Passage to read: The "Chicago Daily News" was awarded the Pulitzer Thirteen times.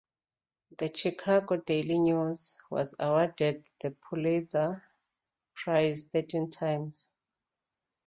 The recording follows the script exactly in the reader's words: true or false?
false